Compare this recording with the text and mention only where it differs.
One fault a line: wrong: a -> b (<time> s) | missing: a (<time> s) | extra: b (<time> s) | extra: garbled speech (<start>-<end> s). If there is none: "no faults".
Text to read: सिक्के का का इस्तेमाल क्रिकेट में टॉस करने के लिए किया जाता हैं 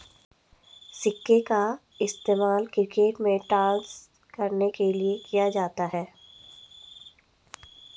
missing: का (1.8 s)